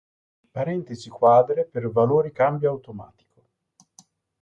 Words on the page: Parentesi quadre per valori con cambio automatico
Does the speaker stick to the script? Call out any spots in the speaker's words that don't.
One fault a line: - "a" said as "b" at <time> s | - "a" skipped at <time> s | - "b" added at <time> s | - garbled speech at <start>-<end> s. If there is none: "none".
- "con" skipped at 2.3 s